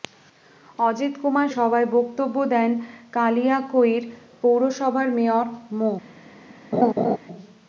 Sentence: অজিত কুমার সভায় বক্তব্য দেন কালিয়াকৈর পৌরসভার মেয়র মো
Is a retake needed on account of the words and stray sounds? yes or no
yes